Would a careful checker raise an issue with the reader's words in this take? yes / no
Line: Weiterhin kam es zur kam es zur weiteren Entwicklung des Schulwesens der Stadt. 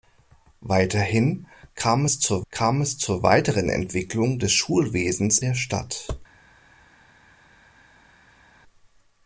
no